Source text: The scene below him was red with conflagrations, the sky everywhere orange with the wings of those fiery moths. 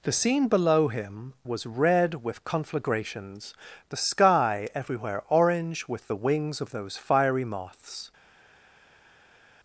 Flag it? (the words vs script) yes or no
no